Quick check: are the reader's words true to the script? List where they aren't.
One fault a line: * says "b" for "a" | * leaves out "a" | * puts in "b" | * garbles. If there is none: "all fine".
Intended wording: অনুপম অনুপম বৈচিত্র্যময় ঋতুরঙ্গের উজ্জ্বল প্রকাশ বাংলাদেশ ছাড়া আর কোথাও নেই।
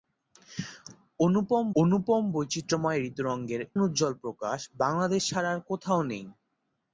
all fine